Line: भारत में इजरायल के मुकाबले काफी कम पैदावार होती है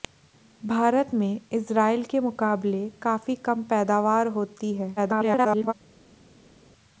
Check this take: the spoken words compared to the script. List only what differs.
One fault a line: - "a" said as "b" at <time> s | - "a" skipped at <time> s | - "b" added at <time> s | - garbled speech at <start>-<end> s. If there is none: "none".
- garbled speech at 5.0-5.7 s